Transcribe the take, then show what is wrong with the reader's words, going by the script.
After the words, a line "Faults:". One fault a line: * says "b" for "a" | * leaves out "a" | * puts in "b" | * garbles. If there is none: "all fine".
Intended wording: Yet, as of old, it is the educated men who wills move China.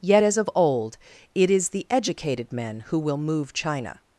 Yet, as of old, it is the educated men who will move China.
Faults:
* says "will" for "wills"